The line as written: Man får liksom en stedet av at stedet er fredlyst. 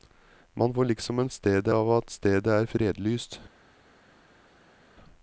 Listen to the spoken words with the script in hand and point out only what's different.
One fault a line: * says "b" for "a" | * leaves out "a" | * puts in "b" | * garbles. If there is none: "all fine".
all fine